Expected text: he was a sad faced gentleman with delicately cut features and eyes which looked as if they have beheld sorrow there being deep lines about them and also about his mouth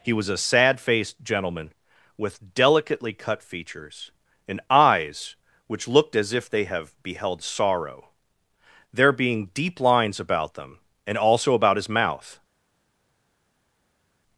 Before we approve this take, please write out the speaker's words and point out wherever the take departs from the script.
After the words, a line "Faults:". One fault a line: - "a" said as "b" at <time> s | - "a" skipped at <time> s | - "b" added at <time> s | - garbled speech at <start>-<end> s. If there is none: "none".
he was a sad faced gentleman with delicately cut features and eyes which looked as if they have beheld sorrow there being deep lines about them and also about his mouth
Faults:
none